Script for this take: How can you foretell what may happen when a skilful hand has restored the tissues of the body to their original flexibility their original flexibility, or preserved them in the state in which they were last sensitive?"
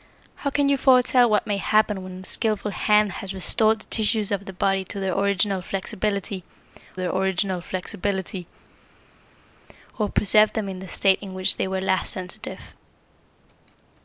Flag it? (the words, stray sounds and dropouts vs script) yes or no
no